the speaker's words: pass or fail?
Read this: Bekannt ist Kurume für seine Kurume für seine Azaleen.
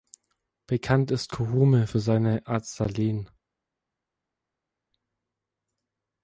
fail